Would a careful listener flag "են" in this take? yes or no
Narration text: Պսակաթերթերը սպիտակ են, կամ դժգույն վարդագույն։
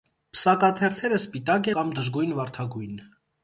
yes